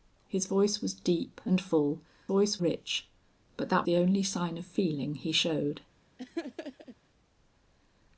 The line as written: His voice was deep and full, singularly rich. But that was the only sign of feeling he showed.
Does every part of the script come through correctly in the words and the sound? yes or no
no